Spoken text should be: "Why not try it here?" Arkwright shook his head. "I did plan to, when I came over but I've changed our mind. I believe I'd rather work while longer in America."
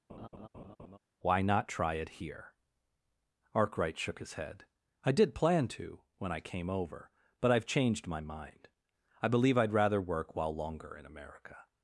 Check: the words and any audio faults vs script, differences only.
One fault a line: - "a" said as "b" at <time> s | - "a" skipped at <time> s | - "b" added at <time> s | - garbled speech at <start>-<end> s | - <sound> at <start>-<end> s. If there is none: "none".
- laugh at 0.1-1.0 s
- "our" said as "my" at 8.1 s